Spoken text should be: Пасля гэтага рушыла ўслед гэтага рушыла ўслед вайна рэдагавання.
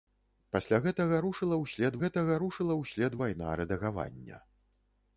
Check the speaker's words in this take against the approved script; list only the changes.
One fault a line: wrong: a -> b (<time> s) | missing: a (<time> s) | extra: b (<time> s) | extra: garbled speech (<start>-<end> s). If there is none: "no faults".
no faults